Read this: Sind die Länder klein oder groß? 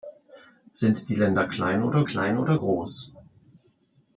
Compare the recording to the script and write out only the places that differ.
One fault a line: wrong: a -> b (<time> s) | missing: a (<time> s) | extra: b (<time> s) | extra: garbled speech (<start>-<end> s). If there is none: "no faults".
extra: klein oder (2.0 s)